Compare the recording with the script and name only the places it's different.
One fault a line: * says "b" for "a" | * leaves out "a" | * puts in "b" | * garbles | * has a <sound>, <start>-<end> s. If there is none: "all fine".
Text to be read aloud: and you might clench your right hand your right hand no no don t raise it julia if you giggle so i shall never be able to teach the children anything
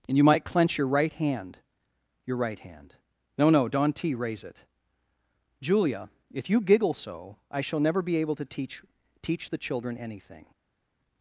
* puts in "teach"